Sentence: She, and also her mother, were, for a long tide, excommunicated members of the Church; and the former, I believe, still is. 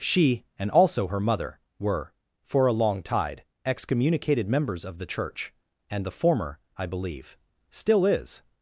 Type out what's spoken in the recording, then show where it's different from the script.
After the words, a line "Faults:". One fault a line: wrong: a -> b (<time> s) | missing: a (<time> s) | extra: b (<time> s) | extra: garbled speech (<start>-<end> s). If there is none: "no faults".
She, and also her mother, were, for a long tide, excommunicated members of the Church; and the former, I believe, still is.
Faults:
no faults